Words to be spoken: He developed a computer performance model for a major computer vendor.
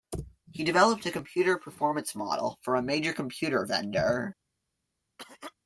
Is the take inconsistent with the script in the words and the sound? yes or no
yes